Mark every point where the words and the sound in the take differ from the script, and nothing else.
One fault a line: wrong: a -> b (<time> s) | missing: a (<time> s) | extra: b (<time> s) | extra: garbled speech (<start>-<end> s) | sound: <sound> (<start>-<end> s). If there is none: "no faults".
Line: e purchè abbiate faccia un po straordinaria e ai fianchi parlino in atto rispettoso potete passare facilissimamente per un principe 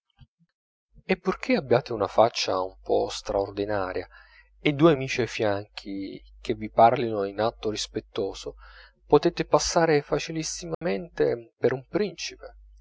extra: una (1.9 s)
extra: due amici (4.7 s)
extra: che vi (6.4 s)
sound: dropout (10.7-10.8 s)